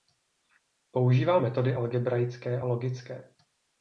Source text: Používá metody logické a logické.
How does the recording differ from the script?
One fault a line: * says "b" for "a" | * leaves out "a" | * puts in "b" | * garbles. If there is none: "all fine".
* says "algebraické" for "logické"